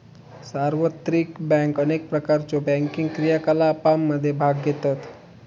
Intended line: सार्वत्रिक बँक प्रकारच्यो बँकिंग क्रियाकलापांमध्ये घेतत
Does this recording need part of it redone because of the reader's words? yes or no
yes